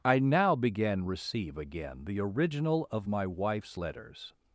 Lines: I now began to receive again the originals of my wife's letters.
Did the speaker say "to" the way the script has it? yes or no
no